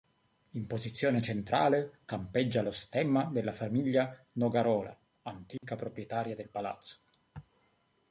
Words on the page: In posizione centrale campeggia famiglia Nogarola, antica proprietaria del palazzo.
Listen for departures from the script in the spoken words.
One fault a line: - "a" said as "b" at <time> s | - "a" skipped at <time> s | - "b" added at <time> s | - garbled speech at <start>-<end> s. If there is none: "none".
- "lo stemma della" added at 2.6 s